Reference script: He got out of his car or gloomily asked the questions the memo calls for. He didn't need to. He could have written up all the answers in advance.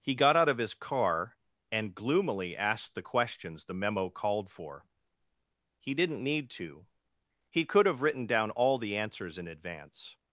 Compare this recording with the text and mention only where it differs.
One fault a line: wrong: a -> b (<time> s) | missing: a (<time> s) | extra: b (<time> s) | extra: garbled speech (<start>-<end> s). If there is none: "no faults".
wrong: or -> and (1.7 s)
wrong: calls -> called (4.1 s)
wrong: up -> down (8.2 s)